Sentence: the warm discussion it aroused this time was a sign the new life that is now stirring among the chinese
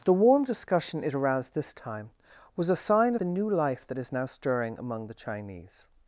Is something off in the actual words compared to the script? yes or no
no